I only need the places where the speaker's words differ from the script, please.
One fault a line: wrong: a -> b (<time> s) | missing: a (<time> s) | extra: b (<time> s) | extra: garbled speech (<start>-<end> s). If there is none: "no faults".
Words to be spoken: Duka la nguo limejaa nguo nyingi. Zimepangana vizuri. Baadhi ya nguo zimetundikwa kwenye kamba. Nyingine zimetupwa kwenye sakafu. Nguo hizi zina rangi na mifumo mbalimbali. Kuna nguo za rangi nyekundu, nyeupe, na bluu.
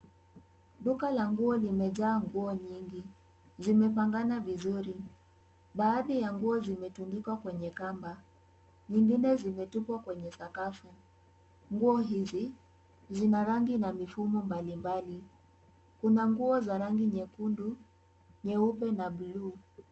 no faults